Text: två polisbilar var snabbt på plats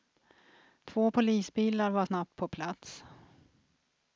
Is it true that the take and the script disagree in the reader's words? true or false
false